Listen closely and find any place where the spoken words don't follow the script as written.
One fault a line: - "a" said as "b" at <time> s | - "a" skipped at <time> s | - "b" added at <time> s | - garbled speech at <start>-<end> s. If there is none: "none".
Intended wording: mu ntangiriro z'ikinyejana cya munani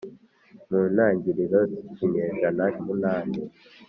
- "cya" skipped at 2.6 s